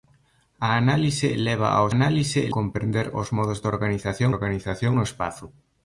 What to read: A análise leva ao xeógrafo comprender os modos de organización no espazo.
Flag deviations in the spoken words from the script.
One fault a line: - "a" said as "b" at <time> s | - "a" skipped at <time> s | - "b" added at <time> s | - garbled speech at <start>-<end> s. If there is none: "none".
- "xeógrafo" said as "análise" at 1.9 s
- "organización" added at 4.3 s